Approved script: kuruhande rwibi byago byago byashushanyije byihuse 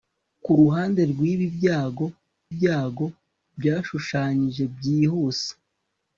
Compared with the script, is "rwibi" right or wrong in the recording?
right